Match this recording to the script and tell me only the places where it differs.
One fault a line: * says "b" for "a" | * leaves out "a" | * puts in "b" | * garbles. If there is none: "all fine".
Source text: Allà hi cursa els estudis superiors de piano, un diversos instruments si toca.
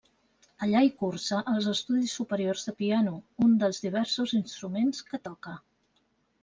* puts in "dels"
* says "que" for "si"